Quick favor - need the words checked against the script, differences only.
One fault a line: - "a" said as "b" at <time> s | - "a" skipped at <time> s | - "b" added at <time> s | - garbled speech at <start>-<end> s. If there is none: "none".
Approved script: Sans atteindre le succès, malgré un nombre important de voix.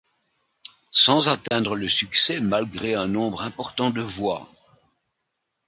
none